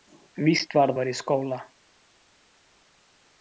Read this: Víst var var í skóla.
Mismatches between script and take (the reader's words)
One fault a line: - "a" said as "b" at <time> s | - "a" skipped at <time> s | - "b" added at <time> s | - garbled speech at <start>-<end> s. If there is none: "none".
none